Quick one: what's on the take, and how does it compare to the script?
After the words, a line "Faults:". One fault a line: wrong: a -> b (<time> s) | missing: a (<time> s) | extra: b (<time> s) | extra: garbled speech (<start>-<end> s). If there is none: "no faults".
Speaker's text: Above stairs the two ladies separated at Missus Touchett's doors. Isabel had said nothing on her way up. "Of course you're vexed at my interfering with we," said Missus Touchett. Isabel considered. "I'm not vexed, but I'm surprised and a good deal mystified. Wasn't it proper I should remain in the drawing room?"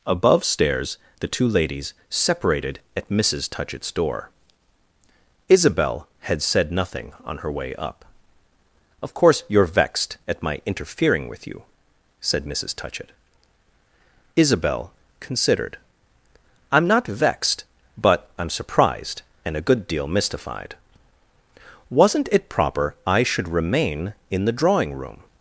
Above stairs the two ladies separated at Missus Touchett's door. Isabel had said nothing on her way up. "Of course you're vexed at my interfering with you," said Missus Touchett. Isabel considered. "I'm not vexed, but I'm surprised and a good deal mystified. Wasn't it proper I should remain in the drawing room?"
Faults:
wrong: doors -> door (3.9 s)
wrong: we -> you (11.5 s)